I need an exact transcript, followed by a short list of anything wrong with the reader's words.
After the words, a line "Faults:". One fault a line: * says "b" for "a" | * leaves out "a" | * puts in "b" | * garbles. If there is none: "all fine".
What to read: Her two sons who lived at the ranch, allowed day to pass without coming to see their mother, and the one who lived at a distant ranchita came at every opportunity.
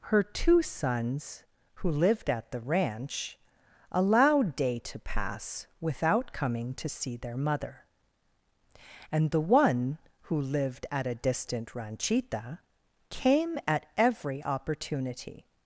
Her two sons who lived at the ranch, allowed day to pass without coming to see their mother, and the one who lived at a distant ranchita came at every opportunity.
Faults:
all fine